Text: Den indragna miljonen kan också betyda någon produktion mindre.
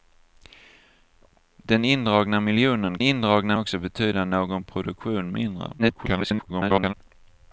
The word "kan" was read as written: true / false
false